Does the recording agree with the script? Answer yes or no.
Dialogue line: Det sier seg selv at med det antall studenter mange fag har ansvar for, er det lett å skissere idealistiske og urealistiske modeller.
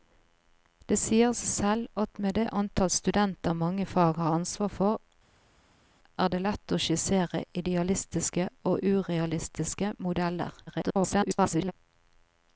no